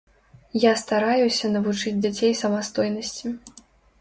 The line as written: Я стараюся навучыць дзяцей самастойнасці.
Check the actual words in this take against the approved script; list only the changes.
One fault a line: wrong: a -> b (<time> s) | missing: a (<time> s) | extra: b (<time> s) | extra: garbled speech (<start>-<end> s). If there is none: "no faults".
no faults